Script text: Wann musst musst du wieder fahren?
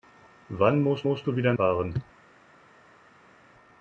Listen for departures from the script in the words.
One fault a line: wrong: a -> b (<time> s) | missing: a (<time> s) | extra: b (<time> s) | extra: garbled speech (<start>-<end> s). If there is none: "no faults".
no faults